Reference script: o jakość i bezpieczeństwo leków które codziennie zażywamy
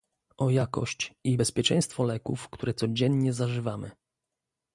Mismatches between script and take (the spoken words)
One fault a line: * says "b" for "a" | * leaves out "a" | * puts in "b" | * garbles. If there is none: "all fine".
all fine